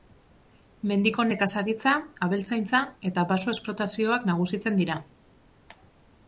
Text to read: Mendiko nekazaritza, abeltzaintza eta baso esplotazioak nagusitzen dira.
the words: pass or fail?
pass